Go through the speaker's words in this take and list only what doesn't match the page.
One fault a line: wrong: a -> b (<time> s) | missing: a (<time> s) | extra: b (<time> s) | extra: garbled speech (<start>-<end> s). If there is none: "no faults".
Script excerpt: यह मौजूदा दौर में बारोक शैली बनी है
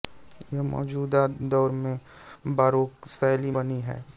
no faults